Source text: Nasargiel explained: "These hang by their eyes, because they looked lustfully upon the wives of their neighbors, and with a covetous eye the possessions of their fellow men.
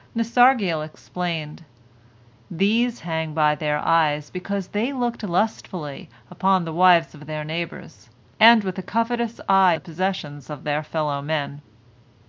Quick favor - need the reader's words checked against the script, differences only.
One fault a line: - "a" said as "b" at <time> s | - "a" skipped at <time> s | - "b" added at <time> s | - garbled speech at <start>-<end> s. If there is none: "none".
none